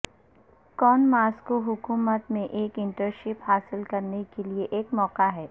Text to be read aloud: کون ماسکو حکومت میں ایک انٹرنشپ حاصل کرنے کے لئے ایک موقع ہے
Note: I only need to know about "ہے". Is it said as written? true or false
true